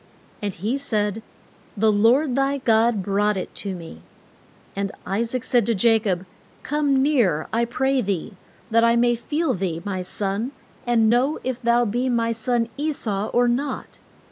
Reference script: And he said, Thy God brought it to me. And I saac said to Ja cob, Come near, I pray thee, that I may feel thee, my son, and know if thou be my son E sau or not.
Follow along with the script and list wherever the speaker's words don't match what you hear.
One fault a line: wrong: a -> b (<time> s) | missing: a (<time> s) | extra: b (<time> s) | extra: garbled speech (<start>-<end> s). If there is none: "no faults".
extra: The Lord (1.8 s)